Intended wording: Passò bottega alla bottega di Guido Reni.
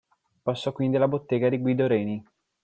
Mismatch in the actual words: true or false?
true